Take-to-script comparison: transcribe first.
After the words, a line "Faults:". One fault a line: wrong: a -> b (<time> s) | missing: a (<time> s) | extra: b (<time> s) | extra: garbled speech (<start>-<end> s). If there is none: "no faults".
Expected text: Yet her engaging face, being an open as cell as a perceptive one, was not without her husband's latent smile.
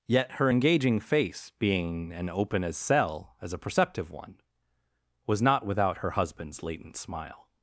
Yet her engaging face, being an open as cell as a perceptive one, was not without her husband's latent smile.
Faults:
no faults